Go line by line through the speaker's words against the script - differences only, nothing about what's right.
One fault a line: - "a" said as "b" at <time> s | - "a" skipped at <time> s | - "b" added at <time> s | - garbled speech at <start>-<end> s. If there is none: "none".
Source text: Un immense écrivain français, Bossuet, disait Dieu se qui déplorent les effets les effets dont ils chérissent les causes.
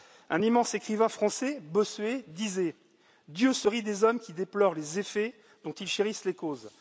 - "rit des hommes" added at 3.7 s
- "les effets" skipped at 5.3 s